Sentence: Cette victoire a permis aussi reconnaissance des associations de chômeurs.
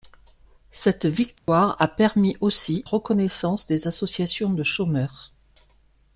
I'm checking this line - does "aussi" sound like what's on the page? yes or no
yes